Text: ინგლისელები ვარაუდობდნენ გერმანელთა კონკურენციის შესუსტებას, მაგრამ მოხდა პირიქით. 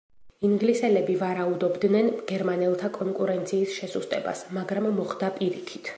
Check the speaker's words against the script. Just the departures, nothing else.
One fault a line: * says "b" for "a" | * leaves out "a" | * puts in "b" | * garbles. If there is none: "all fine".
all fine